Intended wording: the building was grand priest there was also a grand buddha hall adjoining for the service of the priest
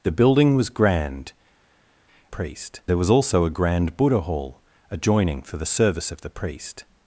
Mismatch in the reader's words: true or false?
false